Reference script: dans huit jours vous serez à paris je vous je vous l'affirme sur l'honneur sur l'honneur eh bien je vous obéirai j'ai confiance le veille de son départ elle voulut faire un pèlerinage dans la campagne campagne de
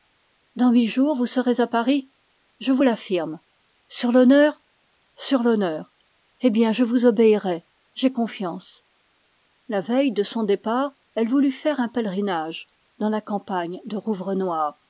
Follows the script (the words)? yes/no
no